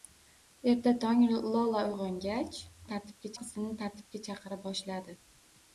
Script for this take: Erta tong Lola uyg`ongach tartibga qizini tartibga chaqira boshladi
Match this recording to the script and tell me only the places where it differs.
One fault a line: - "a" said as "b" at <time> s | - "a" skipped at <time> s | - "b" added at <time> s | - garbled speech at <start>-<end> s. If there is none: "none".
none